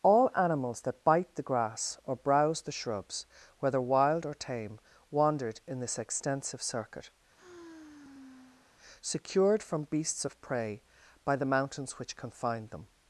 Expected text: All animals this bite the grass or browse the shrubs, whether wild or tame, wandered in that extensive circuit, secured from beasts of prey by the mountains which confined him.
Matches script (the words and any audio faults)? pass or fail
fail